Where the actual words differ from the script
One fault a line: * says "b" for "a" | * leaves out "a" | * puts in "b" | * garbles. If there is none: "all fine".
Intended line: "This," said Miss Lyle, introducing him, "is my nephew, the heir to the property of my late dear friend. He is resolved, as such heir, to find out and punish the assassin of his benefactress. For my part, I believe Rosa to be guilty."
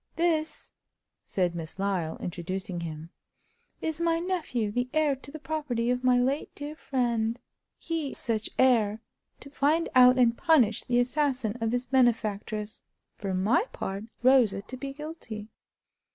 * leaves out "is resolved as"
* leaves out "I believe"